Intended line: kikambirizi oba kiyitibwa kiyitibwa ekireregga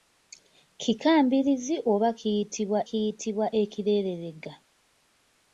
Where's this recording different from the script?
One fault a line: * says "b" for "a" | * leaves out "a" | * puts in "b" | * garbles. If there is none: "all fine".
all fine